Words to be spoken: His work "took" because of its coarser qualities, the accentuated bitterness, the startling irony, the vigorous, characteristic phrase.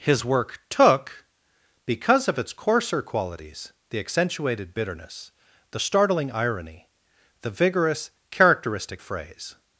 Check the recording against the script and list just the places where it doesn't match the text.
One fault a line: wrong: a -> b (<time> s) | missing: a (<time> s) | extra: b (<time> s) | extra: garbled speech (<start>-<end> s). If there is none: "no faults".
no faults